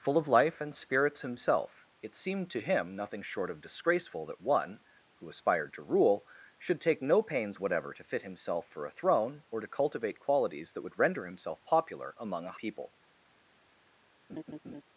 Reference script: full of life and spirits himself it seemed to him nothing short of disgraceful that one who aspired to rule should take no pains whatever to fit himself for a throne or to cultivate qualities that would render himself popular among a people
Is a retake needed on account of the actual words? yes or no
no